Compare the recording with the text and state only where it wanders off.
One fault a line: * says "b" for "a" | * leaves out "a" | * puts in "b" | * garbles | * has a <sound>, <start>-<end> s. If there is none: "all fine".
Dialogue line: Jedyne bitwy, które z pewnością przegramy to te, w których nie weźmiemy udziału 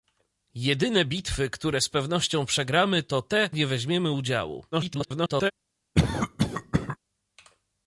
* leaves out "w których"
* garbles
* has a cough, 5.9-7.0 s